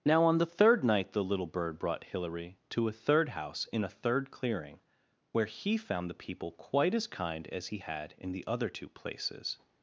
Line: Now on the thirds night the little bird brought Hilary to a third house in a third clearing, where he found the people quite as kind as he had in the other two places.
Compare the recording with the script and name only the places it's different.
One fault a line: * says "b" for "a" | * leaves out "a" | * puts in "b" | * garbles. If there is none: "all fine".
* says "third" for "thirds"